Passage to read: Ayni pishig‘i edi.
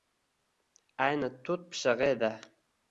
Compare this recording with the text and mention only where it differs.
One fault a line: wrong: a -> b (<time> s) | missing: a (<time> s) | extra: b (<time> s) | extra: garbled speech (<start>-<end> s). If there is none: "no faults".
extra: tut (1.4 s)